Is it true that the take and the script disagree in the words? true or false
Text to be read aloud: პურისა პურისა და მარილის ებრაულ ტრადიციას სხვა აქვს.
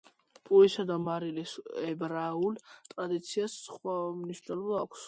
true